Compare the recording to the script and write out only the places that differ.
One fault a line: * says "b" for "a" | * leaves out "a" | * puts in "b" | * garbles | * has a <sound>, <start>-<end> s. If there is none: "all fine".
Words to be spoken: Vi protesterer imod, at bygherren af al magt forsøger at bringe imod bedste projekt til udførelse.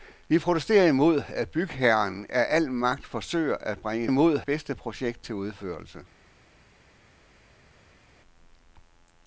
all fine